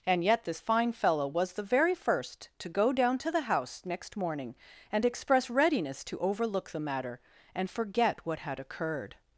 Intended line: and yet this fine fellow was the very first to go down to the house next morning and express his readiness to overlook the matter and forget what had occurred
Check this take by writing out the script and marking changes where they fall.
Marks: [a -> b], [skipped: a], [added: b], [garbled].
and yet this fine fellow was the very first to go down to the house next morning and express [skipped: his] readiness to overlook the matter and forget what had occurred